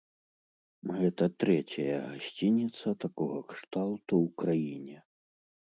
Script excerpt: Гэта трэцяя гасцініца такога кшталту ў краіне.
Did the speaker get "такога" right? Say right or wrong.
right